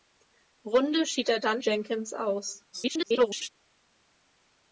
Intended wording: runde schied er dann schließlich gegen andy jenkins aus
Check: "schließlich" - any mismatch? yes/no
yes